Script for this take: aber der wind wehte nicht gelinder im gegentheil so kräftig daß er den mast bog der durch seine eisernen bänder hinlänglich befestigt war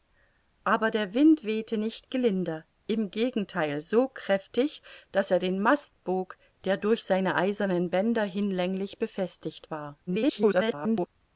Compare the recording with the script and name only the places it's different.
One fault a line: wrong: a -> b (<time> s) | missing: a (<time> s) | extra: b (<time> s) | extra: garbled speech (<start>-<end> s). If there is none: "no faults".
extra: garbled speech (10.1-11.1 s)